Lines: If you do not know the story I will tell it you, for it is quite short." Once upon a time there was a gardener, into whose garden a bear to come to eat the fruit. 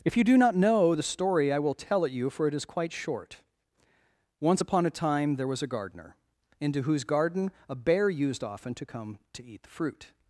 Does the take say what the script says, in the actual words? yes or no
no